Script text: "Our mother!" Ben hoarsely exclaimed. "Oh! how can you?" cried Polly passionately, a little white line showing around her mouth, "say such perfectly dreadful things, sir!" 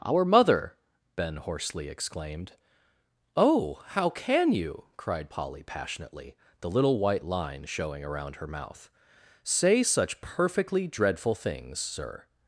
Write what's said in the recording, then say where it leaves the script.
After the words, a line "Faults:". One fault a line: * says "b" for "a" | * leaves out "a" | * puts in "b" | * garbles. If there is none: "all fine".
"Our mother!" Ben hoarsely exclaimed. "Oh! how can you?" cried Polly passionately, the little white line showing around her mouth, "say such perfectly dreadful things, sir!"
Faults:
* says "the" for "a"